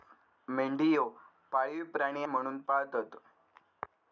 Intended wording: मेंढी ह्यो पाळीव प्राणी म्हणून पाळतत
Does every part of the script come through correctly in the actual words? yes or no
yes